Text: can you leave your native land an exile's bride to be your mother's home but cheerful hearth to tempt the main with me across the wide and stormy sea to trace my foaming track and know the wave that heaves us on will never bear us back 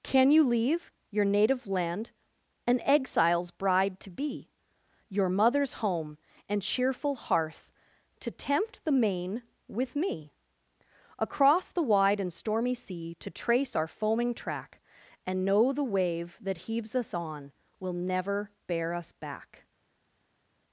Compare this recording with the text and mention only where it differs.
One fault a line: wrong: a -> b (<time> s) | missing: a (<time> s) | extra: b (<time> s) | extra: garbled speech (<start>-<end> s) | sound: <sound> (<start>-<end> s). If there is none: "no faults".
wrong: but -> and (6.5 s)
wrong: my -> our (13.8 s)